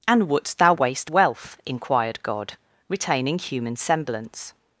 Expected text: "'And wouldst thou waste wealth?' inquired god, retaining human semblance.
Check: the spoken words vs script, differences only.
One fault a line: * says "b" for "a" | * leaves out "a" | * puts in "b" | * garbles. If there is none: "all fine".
all fine